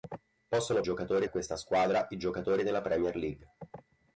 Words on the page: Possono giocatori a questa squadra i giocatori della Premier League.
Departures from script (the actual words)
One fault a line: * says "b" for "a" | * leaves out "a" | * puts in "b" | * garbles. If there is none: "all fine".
all fine